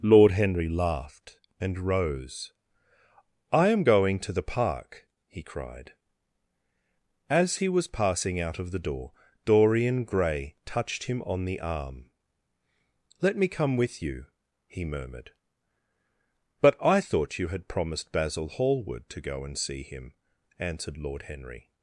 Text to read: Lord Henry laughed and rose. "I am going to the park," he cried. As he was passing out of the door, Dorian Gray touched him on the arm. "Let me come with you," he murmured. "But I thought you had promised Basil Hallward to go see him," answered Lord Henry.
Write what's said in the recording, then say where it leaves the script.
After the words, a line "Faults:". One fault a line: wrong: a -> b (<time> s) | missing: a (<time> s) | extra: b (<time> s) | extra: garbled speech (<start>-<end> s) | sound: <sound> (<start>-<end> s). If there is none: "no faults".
Lord Henry laughed and rose. "I am going to the park," he cried. As he was passing out of the door, Dorian Gray touched him on the arm. "Let me come with you," he murmured. "But I thought you had promised Basil Hallward to go and see him," answered Lord Henry.
Faults:
extra: and (19.4 s)